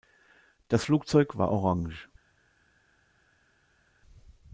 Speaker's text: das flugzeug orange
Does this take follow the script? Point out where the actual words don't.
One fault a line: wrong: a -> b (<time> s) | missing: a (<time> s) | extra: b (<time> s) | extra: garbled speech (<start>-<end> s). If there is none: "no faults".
extra: war (1.4 s)